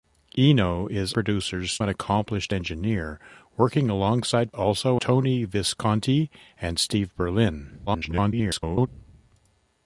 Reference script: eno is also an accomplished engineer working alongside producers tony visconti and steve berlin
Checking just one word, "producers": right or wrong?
wrong